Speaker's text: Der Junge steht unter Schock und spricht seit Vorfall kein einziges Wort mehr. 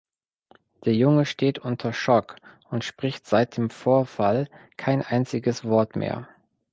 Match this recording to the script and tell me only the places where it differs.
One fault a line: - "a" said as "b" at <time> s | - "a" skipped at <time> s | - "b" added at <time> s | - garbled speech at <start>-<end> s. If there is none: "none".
- "dem" added at 3.5 s